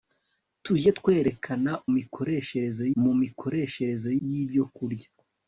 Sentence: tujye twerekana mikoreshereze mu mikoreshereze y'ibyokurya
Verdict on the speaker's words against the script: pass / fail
pass